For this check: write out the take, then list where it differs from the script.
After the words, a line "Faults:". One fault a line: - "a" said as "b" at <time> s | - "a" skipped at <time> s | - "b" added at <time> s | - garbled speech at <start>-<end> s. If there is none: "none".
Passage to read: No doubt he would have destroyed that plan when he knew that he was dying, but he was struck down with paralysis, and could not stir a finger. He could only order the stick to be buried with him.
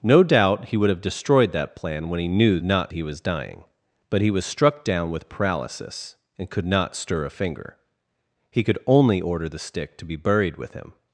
No doubt he would have destroyed that plan when he knew not he was dying, but he was struck down with paralysis, and could not stir a finger. He could only order the stick to be buried with him.
Faults:
- "that" said as "not" at 2.6 s